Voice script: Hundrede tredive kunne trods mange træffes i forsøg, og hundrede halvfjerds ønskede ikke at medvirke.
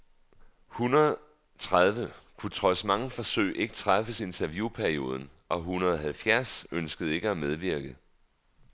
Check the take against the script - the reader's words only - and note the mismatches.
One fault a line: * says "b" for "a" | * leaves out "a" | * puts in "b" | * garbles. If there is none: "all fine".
* puts in "forsøg ikke"
* says "interviewperioden" for "forsøg"